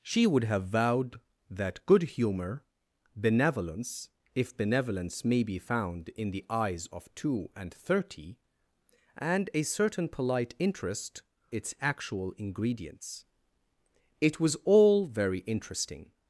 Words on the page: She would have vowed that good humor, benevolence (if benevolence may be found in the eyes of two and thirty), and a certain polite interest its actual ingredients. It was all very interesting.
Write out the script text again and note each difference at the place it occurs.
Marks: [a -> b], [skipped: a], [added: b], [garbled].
She would have vowed that good humor, benevolence (if benevolence may be found in the eyes of two and thirty), and a certain polite interest its actual ingredients. It was all very interesting.